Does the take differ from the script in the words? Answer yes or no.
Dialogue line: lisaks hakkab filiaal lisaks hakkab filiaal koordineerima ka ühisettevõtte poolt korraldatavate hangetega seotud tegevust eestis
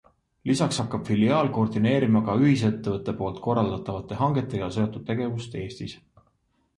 yes